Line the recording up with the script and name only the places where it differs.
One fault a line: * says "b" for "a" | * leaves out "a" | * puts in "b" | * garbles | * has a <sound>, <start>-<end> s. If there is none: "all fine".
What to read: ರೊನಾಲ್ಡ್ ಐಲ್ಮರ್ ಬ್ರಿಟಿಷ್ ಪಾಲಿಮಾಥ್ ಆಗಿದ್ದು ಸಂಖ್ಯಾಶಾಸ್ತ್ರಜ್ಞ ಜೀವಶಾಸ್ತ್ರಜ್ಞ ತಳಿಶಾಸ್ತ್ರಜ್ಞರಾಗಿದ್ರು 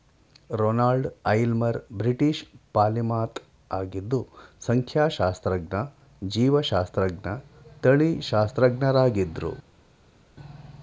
all fine